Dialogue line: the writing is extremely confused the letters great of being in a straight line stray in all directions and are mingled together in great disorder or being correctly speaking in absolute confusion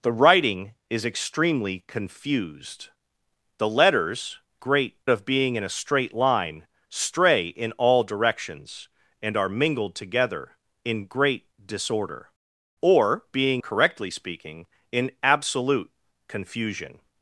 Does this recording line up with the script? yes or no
yes